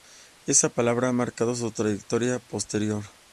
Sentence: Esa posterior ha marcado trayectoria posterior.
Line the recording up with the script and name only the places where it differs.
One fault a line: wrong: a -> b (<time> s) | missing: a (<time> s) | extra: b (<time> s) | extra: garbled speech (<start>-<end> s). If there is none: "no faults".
wrong: posterior -> palabra (0.7 s)
extra: su (1.5 s)